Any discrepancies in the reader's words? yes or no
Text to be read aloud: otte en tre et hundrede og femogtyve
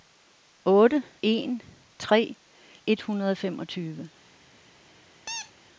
no